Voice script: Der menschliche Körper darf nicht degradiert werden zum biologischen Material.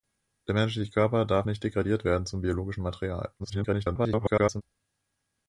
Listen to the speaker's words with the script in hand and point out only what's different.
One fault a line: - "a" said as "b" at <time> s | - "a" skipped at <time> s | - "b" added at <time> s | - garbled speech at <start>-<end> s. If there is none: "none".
- garbled speech at 3.4-4.6 s